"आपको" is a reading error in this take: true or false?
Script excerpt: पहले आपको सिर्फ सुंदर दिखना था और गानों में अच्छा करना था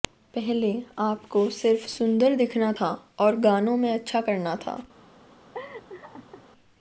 false